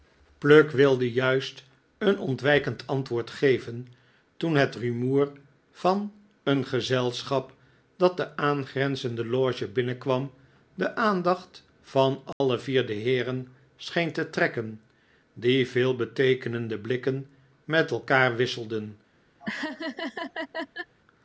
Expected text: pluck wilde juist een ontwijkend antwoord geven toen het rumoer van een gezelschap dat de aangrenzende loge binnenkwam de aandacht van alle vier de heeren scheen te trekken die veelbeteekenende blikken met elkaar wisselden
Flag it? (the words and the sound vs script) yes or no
yes